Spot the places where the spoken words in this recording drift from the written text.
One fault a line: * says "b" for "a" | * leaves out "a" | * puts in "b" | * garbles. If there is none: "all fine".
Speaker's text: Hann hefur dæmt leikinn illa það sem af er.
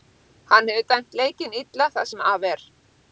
all fine